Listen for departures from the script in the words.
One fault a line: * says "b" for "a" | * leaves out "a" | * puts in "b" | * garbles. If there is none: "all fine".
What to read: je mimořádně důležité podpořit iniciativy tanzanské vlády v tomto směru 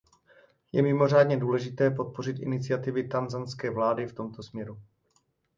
all fine